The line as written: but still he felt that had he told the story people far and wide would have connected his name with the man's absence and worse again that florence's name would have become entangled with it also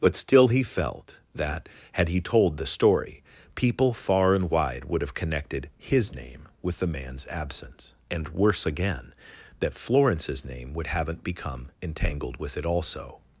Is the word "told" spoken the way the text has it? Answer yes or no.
yes